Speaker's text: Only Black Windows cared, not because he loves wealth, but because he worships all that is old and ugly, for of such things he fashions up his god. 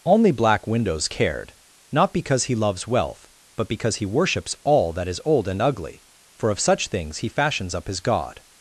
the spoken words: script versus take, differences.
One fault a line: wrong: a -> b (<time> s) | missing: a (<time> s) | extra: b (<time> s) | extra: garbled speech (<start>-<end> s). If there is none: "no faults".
no faults